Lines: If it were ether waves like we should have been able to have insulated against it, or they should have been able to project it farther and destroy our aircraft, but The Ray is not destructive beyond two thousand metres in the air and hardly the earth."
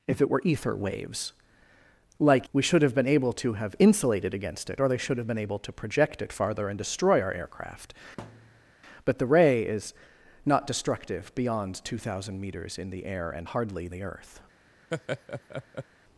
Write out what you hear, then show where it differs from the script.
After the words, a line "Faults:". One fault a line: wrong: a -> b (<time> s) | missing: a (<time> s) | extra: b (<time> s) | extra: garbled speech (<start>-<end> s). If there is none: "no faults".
If it were ether waves like we should have been able to have insulated against it, or they should have been able to project it farther and destroy our aircraft, but The Ray is not destructive beyond two thousand metres in the air and hardly the earth."
Faults:
no faults